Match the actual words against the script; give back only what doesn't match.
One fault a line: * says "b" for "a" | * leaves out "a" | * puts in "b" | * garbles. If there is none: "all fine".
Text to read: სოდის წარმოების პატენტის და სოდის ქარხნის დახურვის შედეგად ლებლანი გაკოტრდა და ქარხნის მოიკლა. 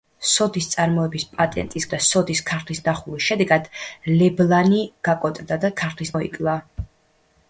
all fine